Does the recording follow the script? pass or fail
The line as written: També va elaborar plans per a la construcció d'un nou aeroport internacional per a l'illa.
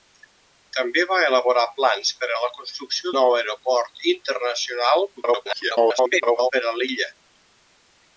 fail